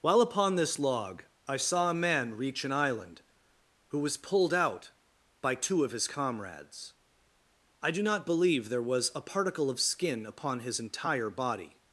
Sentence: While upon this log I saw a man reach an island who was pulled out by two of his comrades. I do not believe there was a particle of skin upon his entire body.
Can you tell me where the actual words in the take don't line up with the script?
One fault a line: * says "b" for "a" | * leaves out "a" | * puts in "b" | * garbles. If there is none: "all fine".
all fine